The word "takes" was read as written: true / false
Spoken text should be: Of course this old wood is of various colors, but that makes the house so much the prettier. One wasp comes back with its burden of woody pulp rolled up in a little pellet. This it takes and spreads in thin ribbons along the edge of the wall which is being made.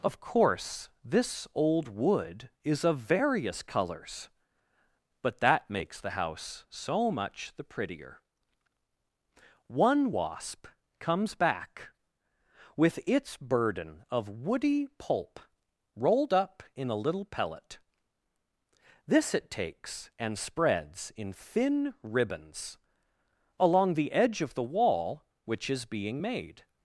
true